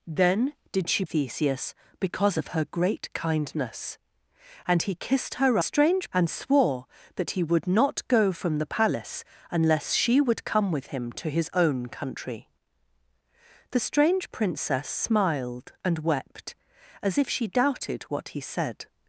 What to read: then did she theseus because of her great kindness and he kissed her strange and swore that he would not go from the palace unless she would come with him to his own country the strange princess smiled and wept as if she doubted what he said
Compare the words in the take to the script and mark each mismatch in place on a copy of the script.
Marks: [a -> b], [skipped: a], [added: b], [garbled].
then did she theseus because of her great kindness and he kissed her strange and swore that he would not go from the palace unless she would come with him to his own country the strange princess smiled and wept as if she doubted what he said